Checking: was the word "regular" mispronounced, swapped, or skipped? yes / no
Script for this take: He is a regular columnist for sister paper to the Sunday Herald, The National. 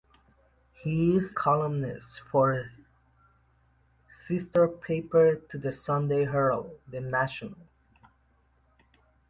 yes